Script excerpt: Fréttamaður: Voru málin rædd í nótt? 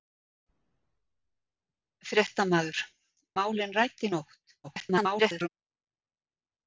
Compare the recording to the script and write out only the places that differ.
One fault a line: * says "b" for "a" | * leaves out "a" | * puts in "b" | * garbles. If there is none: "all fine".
* leaves out "Voru"
* garbles